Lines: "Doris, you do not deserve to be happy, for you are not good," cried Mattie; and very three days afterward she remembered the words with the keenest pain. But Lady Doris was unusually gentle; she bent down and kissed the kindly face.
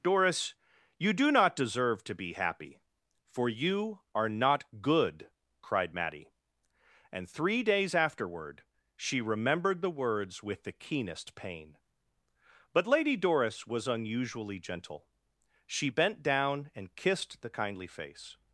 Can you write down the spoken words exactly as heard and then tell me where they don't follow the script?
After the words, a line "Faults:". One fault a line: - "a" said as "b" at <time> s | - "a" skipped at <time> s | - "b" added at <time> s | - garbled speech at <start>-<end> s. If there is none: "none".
"Doris, you do not deserve to be happy, for you are not good," cried Mattie; and three days afterward she remembered the words with the keenest pain. But Lady Doris was unusually gentle; she bent down and kissed the kindly face.
Faults:
- "very" skipped at 7.3 s